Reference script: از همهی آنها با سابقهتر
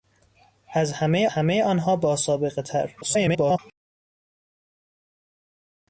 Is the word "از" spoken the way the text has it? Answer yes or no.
yes